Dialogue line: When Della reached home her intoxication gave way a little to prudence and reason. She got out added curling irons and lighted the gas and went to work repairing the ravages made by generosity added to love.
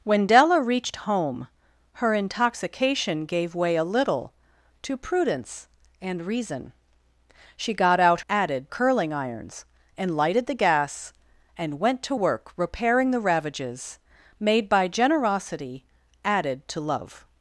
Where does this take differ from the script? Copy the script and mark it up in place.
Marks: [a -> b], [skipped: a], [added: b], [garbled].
When Della reached home her intoxication gave way a little to prudence and reason. She got out added curling irons and lighted the gas and went to work repairing the ravages made by generosity added to love.